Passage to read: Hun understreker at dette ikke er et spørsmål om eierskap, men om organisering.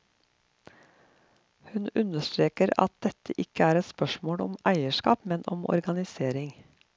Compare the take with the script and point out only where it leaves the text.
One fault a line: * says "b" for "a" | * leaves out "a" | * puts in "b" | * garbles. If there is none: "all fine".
all fine